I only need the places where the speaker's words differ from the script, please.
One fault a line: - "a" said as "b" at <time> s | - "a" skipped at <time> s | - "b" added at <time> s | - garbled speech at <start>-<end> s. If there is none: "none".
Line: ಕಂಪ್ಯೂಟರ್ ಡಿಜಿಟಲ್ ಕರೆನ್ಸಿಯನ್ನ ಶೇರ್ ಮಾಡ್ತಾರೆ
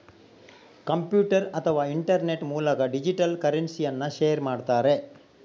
- "ಅಥವಾ ಇಂಟರ್ನೆಟ್ ಮೂಲಕ" added at 1.5 s